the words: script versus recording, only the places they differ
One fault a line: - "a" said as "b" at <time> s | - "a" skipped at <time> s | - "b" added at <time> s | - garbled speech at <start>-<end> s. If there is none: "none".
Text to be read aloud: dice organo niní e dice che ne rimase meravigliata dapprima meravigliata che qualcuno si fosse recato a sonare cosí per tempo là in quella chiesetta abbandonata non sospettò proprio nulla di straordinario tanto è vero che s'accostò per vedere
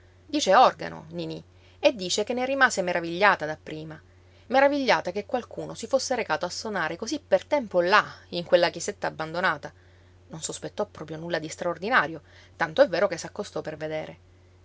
none